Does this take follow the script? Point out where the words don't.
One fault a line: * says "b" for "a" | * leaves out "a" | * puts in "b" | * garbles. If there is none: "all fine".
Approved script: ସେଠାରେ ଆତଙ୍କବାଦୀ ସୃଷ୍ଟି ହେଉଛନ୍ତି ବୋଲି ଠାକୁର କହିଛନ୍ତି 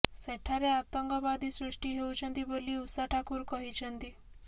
* puts in "ଉଷା"